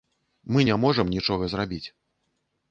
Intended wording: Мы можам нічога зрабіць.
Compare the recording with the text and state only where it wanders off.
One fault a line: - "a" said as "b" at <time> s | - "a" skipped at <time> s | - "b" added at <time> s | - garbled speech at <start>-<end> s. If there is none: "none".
- "не" added at 0.7 s